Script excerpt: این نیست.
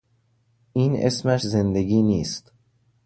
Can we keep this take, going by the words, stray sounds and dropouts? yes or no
no